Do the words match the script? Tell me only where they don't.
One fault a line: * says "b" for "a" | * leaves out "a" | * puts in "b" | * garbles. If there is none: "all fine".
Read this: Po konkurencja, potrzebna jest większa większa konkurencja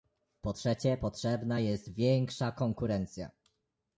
* says "trzecie" for "konkurencja"
* leaves out "większa"